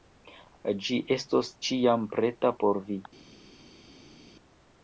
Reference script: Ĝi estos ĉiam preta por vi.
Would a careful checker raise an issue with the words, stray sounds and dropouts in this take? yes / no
no